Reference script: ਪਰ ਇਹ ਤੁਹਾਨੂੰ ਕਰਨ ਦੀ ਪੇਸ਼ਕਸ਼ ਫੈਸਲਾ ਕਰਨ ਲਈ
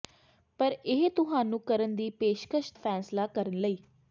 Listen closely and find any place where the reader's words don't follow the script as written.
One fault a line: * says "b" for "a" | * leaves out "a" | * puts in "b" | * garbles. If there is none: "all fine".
all fine